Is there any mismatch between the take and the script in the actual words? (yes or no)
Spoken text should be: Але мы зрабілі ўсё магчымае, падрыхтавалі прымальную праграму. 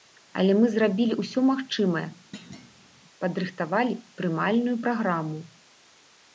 no